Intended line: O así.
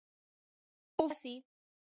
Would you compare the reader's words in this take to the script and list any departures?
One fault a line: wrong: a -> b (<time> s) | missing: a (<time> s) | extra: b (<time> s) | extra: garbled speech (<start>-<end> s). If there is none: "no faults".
no faults